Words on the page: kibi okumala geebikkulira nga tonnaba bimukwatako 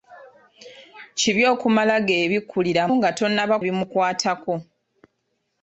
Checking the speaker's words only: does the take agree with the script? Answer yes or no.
yes